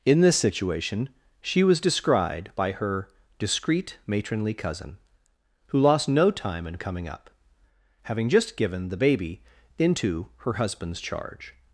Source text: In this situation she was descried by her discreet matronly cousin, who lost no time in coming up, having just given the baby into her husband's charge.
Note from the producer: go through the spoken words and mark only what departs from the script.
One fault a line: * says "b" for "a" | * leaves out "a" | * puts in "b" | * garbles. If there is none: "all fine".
all fine